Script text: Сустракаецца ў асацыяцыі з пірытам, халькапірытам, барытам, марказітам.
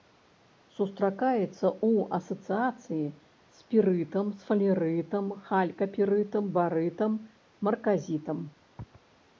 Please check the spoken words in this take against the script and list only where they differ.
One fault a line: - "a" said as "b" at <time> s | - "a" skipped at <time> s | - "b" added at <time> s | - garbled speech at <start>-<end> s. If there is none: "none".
- "сфалерытам" added at 4.4 s